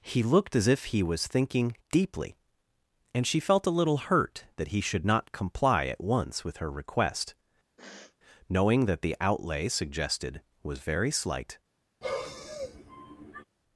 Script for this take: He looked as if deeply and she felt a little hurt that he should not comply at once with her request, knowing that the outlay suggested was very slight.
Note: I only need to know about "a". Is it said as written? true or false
true